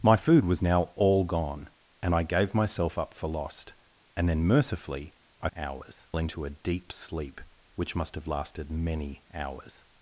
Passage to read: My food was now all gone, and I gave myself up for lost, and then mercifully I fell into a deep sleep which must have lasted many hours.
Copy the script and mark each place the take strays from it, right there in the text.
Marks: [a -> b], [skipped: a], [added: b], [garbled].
My food was now all gone, and I gave myself up for lost, and then mercifully I [fell -> hours] into a deep sleep which must have lasted many hours.